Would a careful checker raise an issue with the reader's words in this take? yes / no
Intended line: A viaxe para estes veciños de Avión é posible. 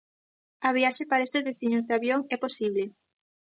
no